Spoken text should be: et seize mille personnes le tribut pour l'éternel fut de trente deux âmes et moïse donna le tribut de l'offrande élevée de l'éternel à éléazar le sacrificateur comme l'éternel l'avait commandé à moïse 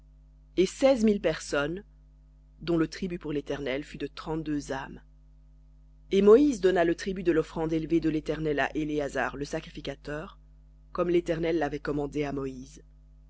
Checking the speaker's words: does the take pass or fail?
fail